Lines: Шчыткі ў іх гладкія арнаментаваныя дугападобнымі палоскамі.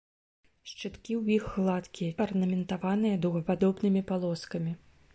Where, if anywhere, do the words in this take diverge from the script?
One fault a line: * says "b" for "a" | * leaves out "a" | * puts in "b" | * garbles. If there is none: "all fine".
all fine